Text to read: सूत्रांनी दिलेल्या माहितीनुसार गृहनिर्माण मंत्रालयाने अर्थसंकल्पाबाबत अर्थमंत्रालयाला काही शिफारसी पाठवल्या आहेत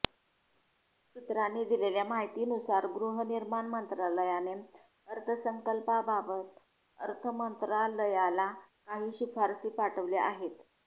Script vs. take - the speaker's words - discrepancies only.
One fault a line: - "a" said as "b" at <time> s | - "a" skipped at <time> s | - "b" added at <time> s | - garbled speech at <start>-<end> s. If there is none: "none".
none